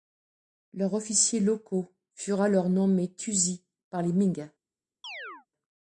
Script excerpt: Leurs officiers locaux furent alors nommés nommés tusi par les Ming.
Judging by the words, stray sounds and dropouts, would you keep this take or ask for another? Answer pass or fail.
fail